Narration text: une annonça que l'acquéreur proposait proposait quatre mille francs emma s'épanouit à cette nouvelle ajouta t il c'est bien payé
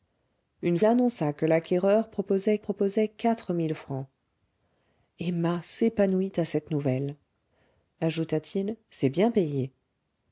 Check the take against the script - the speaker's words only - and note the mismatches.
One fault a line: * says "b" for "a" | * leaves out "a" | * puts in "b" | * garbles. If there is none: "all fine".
all fine